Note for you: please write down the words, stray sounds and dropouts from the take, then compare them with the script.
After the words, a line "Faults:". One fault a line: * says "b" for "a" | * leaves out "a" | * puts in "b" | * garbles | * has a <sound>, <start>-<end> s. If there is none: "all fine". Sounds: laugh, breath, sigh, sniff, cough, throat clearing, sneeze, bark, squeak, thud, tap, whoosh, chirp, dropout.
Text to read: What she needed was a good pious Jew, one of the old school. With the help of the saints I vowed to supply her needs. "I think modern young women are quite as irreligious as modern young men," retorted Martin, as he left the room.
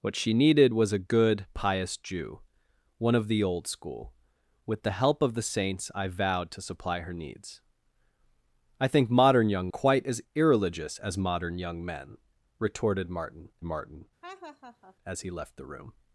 What she needed was a good pious Jew, one of the old school. With the help of the saints I vowed to supply her needs. "I think modern young quite as irreligious as modern young men," retorted Martin Martin, as he left the room.
Faults:
* leaves out "women are"
* puts in "Martin"
* has a laugh, 14.2-15.0 s